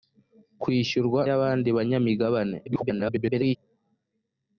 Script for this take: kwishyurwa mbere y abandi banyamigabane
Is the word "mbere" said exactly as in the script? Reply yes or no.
no